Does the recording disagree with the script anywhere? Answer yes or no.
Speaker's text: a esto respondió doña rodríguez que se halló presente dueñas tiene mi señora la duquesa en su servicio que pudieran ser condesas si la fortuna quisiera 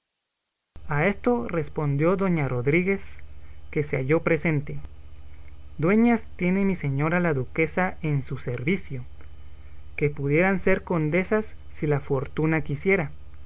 no